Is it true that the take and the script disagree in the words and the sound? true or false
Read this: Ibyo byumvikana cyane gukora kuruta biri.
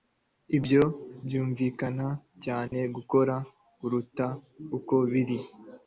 true